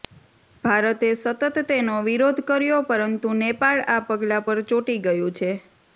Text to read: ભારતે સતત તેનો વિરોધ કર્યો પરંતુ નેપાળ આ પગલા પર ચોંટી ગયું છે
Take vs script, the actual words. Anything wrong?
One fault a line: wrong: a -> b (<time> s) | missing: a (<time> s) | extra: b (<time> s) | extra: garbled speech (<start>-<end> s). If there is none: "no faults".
no faults